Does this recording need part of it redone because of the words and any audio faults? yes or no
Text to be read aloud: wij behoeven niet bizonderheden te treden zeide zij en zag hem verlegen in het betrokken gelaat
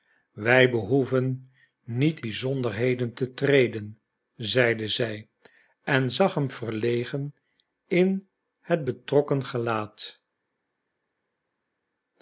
no